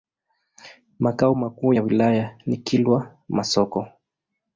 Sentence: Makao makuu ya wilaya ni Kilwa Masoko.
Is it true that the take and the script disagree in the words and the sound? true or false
false